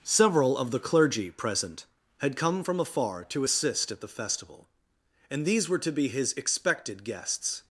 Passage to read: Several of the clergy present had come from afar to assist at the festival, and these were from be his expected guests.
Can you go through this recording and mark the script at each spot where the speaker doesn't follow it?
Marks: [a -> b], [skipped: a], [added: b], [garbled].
Several of the clergy present had come from afar to assist at the festival, and these were [from -> to] be his expected guests.